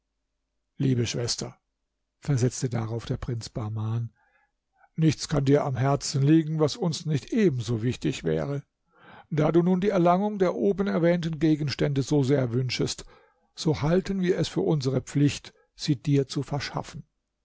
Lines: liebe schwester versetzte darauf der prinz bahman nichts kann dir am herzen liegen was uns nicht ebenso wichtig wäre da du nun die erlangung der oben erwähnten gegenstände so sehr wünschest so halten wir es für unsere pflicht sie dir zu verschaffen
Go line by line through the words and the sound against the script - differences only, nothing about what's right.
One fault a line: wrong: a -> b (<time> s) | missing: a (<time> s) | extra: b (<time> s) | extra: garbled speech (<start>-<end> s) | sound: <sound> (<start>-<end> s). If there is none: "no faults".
no faults